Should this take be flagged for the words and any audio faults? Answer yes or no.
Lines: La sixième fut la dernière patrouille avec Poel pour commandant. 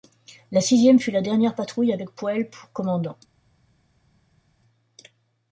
no